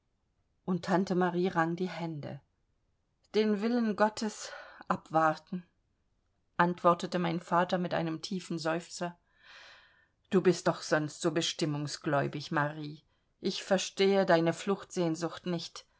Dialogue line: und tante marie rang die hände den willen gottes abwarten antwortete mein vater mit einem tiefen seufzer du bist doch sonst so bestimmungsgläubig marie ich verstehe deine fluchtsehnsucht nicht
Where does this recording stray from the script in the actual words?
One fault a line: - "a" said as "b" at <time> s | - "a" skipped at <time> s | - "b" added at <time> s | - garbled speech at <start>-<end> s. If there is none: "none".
none